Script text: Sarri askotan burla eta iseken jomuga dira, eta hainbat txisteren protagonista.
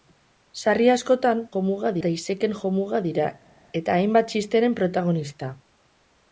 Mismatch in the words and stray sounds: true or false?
true